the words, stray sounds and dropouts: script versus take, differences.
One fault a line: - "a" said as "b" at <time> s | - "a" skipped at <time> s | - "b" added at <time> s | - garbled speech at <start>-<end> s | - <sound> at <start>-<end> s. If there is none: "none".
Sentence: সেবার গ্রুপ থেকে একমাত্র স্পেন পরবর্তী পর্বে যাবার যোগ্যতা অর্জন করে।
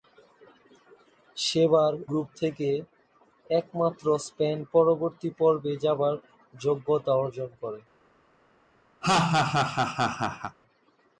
- laugh at 9.0-10.6 s